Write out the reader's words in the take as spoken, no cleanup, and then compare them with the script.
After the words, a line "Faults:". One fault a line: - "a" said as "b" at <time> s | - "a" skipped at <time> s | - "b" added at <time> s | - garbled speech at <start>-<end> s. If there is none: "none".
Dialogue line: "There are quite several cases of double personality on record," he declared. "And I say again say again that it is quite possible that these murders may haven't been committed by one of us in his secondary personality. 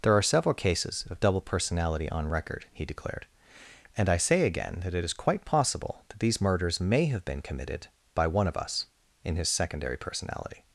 "There are several cases of double personality on record," he declared. "And I say again that it is quite possible that these murders may have been committed by one of us in his secondary personality.
Faults:
- "quite" skipped at 0.2 s
- "say again" skipped at 4.8 s
- "haven't" said as "have" at 7.1 s